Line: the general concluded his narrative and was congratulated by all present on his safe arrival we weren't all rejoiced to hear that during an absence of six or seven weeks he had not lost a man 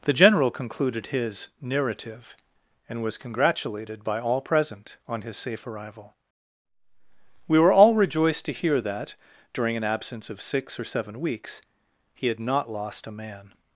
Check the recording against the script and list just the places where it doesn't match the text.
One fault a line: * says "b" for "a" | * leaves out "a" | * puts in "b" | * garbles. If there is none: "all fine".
* says "were" for "weren't"